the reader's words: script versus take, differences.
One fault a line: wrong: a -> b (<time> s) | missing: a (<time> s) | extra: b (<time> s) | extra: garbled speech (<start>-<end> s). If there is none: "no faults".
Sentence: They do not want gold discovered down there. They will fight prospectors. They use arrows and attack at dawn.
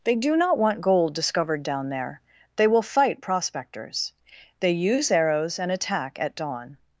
no faults